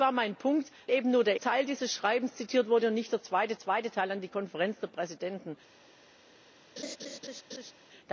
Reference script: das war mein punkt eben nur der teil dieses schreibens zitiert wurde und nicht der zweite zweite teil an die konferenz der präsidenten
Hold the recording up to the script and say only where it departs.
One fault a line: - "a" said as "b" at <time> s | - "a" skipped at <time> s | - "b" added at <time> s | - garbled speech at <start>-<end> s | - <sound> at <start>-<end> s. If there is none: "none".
- laugh at 6.8-7.7 s